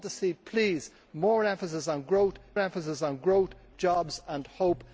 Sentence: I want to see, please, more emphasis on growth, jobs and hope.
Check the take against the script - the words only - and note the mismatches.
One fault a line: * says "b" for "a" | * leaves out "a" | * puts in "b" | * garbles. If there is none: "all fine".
* puts in "emphasis on growth"